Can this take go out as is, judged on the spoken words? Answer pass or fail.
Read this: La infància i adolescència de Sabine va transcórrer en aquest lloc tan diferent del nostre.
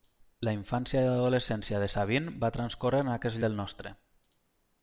fail